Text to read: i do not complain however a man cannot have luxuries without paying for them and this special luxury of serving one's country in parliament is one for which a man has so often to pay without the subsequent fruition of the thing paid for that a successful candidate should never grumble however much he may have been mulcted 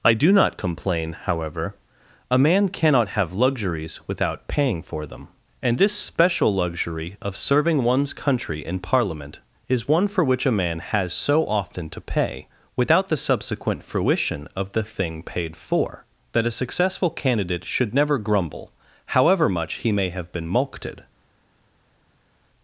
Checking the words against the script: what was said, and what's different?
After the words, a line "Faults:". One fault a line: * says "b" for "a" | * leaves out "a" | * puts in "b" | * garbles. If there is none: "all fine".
i do not complain however a man cannot have luxuries without paying for them and this special luxury of serving one's country in parliament is one for which a man has so often to pay without the subsequent fruition of the thing paid for that a successful candidate should never grumble however much he may have been mulcted
Faults:
all fine